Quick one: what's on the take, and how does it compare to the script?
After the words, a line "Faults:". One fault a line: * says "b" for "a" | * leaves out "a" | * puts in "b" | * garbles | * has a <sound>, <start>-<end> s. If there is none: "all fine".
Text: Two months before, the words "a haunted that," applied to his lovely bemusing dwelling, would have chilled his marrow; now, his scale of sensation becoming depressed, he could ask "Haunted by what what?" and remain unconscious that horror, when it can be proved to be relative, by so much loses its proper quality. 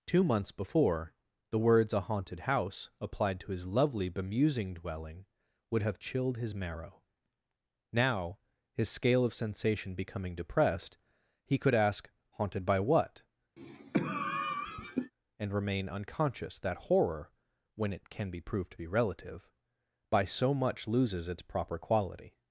Two months before, the words "a haunted house," applied to his lovely bemusing dwelling, would have chilled his marrow; now, his scale of sensation becoming depressed, he could ask "Haunted by what?" and remain unconscious that horror, when it can be proved to be relative, by so much loses its proper quality.
Faults:
* says "house" for "that"
* leaves out "what"
* has a cough, 13.6-15.1 s